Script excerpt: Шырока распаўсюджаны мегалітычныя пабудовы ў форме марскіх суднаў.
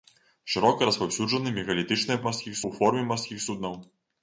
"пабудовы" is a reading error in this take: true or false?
true